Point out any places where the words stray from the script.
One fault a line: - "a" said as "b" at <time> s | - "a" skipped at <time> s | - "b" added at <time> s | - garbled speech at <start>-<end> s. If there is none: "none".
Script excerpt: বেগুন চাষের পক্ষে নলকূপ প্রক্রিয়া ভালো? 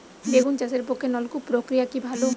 - "কি" added at 1.9 s